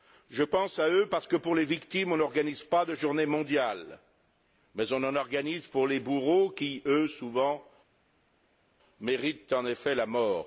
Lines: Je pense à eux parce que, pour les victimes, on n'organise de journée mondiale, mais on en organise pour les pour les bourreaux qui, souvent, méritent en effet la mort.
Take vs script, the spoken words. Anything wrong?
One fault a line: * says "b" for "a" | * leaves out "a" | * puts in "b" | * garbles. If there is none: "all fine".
* puts in "pas"
* leaves out "pour les"
* puts in "eux"